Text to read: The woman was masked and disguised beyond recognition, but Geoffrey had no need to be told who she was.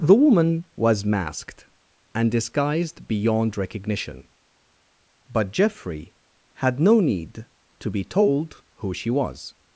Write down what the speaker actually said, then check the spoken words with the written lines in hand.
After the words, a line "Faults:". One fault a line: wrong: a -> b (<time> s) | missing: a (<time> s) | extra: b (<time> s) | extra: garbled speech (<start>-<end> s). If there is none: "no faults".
The woman was masked and disguised beyond recognition, but Geoffrey had no need to be told who she was.
Faults:
no faults